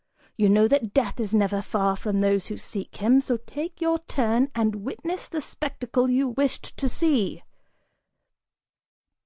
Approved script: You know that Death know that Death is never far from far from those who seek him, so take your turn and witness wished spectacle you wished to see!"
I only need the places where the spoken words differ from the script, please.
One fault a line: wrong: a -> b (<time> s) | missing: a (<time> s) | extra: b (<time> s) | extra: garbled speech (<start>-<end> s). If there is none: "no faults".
missing: know that Death (1.2 s)
missing: far from (2.2 s)
wrong: wished -> the (5.3 s)